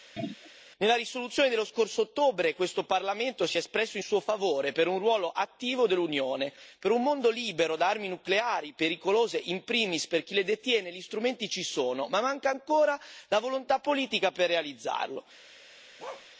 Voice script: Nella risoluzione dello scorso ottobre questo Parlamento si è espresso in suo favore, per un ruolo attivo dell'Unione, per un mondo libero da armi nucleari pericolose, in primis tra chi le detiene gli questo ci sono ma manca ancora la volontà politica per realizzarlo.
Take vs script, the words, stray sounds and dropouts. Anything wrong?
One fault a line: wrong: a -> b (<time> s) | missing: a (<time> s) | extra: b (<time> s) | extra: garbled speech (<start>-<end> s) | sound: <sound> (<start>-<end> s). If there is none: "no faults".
sound: throat clearing (0.2-0.5 s)
wrong: tra -> per (10.1 s)
wrong: questo -> strumenti (11.0 s)
sound: bark (16.0-16.3 s)